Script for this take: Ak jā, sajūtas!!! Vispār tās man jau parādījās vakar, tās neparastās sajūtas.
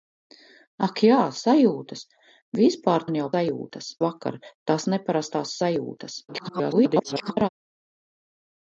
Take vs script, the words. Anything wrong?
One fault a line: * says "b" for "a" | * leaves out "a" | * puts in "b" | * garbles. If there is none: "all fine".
* leaves out "tās"
* says "sajūtas" for "parādījās"
* garbles